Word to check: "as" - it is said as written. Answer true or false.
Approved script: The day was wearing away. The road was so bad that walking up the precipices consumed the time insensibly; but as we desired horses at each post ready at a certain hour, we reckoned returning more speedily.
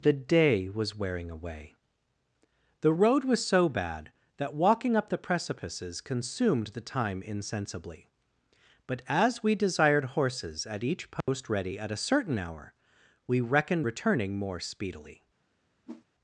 true